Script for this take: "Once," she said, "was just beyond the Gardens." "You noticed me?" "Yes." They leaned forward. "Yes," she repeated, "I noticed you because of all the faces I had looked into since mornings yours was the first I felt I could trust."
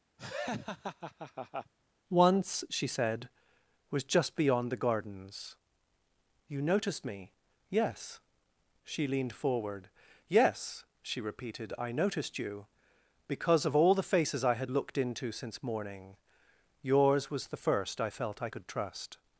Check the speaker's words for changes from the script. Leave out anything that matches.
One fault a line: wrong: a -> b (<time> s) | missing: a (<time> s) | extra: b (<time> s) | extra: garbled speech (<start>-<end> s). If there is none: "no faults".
wrong: They -> She (8.8 s)
wrong: mornings -> morning (15.6 s)